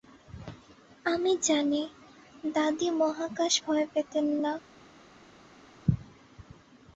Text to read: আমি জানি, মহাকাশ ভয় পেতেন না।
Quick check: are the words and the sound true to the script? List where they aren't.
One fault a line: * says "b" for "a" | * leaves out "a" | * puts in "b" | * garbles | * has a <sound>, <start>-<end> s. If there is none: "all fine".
* puts in "দাদী"